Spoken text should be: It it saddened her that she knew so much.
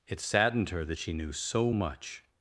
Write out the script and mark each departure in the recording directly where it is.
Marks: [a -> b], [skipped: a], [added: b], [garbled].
It [skipped: it] saddened her that she knew so much.